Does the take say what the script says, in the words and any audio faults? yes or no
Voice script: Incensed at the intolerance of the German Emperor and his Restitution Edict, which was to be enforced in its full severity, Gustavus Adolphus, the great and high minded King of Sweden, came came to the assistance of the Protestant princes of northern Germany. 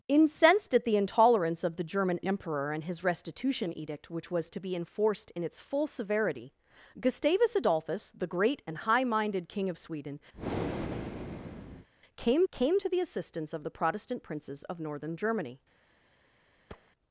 no